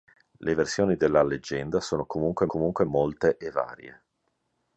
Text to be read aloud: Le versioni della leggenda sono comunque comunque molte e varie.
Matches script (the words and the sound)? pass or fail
pass